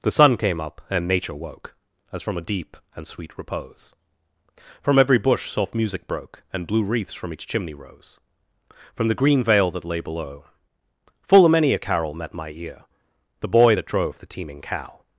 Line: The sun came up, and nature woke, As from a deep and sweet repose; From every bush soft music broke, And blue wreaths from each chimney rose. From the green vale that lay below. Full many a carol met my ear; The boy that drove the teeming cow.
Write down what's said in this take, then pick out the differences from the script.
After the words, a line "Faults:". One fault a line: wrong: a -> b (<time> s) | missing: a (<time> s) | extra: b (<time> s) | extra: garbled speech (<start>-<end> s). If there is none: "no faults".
The sun came up, and nature woke, As from a deep and sweet repose; From every bush soft music broke, And blue wreaths from each chimney rose. From the green vale that lay below. Full a many a carol met my ear; The boy that drove the teeming cow.
Faults:
extra: a (11.4 s)